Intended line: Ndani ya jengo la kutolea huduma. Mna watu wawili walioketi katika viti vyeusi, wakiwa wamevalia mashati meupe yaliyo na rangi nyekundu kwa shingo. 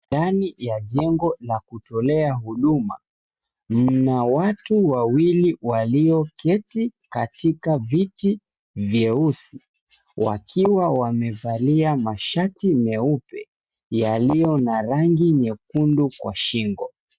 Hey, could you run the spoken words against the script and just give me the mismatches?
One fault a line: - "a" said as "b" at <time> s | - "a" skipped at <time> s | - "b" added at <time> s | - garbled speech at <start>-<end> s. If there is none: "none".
none